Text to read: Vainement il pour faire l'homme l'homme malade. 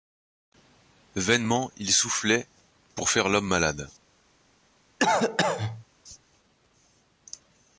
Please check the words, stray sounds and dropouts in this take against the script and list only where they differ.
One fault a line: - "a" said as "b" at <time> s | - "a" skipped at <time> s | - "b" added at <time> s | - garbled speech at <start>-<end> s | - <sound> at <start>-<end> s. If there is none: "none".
- "soufflait" added at 1.9 s
- "l'homme" skipped at 3.5 s
- cough at 5.0-5.8 s